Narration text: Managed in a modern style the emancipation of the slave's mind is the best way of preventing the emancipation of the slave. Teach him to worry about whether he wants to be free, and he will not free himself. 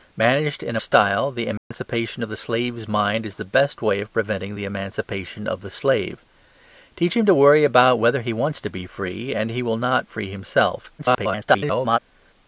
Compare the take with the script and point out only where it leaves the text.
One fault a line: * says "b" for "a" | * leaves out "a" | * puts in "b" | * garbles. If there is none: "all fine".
* leaves out "modern"
* garbles